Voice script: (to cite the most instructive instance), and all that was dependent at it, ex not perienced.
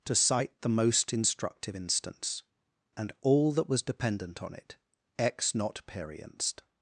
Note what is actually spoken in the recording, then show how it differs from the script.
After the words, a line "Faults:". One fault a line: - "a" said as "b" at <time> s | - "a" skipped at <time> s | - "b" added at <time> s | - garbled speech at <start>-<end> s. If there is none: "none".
(to cite the most instructive instance), and all that was dependent on it, ex not perienced.
Faults:
- "at" said as "on" at 4.4 s